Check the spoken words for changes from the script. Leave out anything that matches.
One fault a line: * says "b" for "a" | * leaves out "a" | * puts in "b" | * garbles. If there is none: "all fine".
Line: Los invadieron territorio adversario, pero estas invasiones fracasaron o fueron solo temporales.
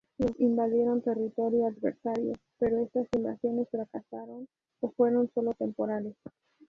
all fine